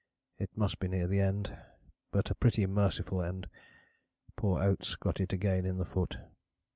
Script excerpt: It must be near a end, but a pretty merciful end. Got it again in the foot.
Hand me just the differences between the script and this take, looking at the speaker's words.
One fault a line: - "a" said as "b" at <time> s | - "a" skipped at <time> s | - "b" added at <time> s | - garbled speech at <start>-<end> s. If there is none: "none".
- "a" said as "the" at 1.1 s
- "Poor Oates" added at 4.3 s